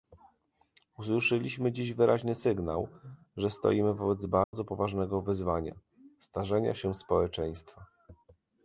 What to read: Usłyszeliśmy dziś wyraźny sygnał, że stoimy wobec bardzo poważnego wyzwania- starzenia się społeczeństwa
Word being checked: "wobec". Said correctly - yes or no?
yes